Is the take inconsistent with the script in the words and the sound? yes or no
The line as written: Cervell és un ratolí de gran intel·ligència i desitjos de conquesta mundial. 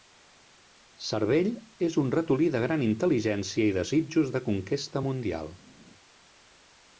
no